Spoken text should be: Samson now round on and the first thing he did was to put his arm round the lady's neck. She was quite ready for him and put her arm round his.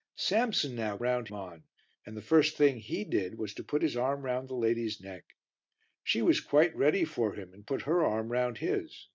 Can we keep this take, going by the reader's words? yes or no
yes